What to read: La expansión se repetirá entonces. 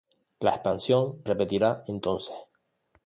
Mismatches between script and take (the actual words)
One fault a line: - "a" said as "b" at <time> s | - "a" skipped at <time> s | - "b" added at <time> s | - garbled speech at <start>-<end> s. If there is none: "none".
- "se" skipped at 1.2 s